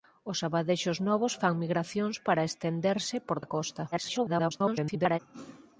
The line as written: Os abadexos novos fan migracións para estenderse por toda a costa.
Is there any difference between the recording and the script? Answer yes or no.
yes